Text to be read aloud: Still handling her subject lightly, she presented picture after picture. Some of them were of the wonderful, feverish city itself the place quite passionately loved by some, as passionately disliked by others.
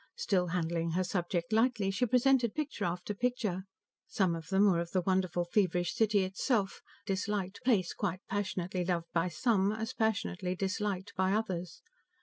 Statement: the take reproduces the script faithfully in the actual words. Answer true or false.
false